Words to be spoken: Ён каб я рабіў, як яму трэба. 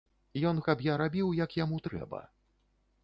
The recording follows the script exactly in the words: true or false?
true